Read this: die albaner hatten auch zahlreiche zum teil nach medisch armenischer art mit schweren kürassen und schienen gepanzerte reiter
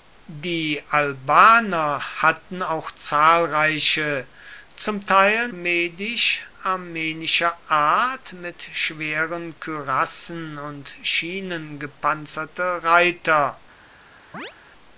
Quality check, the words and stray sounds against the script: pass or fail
fail